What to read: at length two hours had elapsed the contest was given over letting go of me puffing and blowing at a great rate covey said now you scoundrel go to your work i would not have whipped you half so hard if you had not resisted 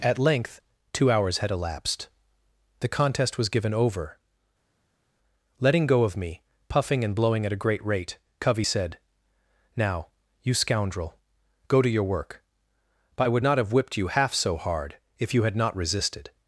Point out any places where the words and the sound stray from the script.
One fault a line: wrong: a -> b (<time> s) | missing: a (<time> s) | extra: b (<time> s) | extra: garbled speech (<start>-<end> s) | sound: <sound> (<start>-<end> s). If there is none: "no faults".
extra: but (13.2 s)